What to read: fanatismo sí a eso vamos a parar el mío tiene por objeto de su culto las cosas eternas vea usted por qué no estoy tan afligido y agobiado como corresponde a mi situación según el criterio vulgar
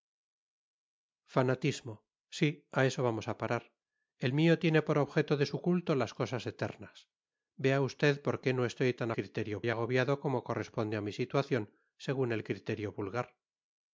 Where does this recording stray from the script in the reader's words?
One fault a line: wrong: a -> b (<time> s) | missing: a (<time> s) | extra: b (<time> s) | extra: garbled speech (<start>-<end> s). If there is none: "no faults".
wrong: afligido -> criterio (9.1 s)